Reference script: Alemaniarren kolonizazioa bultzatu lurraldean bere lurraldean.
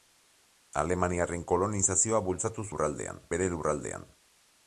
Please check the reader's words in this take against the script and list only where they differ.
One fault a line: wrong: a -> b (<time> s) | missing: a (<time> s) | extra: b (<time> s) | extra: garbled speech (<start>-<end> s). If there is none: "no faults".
no faults